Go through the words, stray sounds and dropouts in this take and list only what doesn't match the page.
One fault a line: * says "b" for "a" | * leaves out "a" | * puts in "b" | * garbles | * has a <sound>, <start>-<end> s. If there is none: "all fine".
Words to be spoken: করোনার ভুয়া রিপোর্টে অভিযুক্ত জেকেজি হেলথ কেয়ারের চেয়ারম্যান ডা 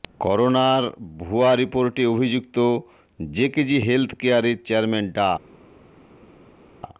all fine